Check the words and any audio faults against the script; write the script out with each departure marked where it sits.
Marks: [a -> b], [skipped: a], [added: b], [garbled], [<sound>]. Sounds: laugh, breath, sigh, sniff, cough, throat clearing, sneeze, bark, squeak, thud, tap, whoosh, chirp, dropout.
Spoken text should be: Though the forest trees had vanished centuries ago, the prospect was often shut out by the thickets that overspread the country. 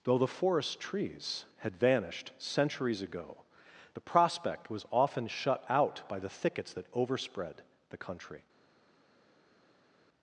Though the forest trees had vanished centuries ago, the prospect was often shut out by the thickets that overspread the country.